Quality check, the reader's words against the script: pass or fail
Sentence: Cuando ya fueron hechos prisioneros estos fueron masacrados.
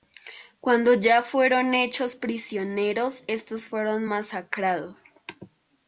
pass